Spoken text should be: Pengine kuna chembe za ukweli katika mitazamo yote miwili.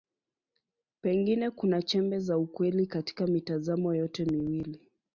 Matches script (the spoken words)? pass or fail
pass